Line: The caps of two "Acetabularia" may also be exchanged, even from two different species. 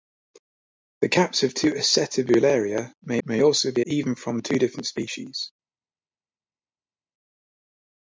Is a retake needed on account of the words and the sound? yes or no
yes